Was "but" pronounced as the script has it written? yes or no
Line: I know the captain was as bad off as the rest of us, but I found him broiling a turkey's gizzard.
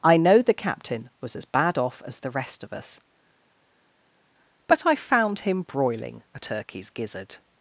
yes